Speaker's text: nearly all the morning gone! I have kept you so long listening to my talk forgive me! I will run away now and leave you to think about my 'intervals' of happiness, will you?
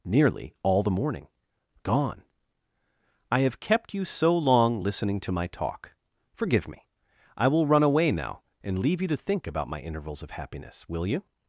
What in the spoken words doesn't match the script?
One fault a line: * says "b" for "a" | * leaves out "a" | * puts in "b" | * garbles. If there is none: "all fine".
all fine